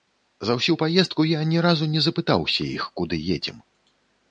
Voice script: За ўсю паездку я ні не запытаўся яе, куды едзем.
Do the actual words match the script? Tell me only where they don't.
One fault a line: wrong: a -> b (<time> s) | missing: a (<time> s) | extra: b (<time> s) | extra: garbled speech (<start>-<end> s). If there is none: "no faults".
extra: разу (1.7 s)
wrong: яе -> іх (2.8 s)